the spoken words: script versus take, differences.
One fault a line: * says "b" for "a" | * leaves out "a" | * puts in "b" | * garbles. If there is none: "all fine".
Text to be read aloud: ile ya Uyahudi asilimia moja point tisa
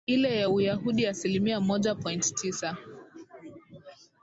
all fine